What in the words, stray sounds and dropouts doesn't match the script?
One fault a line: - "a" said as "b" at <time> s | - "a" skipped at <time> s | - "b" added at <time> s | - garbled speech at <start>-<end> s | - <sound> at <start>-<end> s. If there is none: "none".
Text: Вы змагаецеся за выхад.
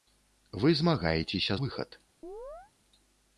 - "за" skipped at 1.6 s
- chirp at 2.2-2.7 s